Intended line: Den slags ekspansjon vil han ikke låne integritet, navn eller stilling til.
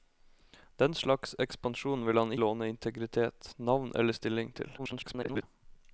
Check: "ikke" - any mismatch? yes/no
yes